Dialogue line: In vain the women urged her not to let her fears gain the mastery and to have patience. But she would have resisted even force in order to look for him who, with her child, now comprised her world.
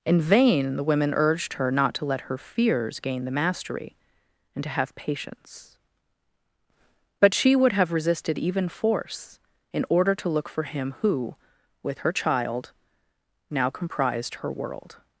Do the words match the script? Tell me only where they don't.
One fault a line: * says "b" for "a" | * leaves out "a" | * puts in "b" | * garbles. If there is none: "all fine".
all fine